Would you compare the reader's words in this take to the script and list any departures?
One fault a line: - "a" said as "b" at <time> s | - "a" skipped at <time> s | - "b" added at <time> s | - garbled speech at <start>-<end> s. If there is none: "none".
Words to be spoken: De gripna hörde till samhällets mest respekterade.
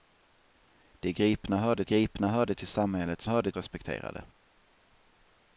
- "gripna hörde" added at 1.8 s
- "mest" said as "hörde" at 3.2 s